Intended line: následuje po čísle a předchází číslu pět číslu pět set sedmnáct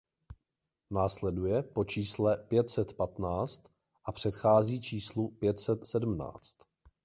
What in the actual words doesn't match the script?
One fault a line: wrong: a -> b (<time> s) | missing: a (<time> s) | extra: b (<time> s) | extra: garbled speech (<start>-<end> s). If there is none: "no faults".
extra: pět set patnáct (2.4 s)
missing: číslu pět (5.6 s)